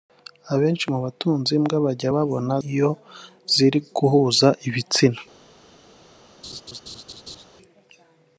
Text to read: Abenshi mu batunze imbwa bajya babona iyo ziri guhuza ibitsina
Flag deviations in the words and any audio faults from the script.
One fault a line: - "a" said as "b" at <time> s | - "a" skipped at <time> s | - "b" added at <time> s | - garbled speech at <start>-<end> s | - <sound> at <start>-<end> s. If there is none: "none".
- laugh at 6.4-7.4 s